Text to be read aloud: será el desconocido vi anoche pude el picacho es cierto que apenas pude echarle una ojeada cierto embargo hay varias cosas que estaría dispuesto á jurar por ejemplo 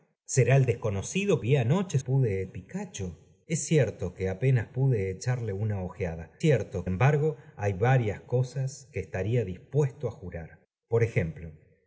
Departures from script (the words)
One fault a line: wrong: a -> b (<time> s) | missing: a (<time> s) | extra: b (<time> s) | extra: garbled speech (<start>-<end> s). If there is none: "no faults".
no faults